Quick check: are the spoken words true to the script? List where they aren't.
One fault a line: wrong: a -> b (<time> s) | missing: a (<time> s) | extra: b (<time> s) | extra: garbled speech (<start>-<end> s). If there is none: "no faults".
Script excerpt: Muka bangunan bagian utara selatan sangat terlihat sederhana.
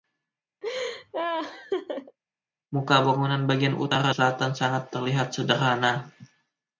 no faults